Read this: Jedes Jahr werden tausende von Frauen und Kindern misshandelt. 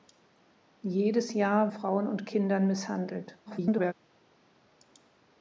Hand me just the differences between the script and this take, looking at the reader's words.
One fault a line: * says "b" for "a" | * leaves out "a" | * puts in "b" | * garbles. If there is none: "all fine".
* leaves out "werden tausende von"
* garbles